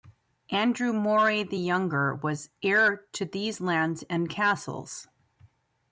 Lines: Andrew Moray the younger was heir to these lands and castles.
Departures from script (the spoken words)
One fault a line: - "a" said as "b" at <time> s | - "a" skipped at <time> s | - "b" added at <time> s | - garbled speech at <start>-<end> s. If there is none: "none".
none